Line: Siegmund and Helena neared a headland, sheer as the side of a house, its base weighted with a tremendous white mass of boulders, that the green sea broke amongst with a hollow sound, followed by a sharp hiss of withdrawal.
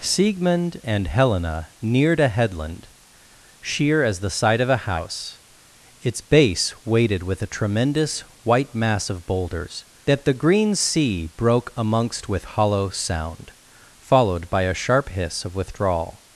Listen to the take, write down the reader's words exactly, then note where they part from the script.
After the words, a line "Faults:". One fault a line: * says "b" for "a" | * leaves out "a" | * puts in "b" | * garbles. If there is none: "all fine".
Siegmund and Helena neared a headland, sheer as the side of a house, its base weighted with a tremendous white mass of boulders, that the green sea broke amongst with hollow sound, followed by a sharp hiss of withdrawal.
Faults:
* leaves out "a"